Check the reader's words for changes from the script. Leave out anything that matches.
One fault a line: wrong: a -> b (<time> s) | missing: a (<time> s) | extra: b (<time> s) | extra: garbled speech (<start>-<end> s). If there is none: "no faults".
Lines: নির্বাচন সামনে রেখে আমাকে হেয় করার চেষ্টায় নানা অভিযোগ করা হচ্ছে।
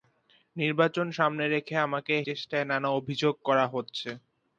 missing: হেয় করার (2.1 s)